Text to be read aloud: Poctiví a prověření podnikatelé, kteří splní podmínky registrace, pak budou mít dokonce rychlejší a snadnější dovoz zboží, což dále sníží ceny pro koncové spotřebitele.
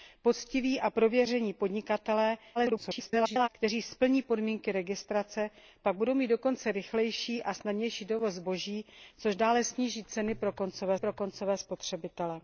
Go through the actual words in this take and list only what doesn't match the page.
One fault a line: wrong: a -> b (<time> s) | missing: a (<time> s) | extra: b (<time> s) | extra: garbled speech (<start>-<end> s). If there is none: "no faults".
extra: garbled speech (2.5-3.5 s)
extra: pro koncové (10.9 s)